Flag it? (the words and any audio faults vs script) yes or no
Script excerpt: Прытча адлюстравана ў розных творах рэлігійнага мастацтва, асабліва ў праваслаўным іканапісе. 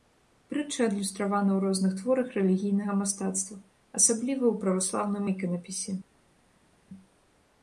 no